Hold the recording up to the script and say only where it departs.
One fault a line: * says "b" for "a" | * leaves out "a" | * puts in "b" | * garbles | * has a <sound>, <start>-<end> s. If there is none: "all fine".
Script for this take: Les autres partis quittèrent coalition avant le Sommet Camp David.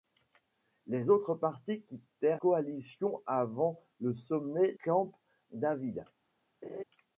* has a laugh, 6.6-6.8 s